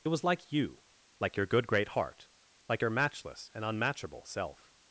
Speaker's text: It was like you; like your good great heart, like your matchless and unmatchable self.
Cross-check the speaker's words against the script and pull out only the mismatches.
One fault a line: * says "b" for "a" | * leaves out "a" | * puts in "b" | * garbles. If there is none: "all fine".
all fine